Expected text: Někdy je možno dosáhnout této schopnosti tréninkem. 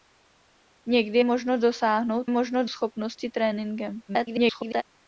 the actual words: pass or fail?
fail